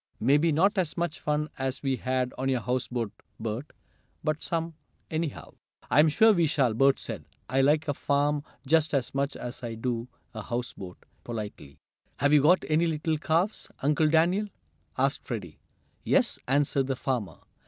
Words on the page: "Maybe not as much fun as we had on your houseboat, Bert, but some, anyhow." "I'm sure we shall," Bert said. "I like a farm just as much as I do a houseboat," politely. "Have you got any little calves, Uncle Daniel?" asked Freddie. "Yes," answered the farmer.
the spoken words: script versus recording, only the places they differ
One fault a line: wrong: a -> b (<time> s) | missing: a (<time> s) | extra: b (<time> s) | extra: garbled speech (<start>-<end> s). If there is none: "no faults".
no faults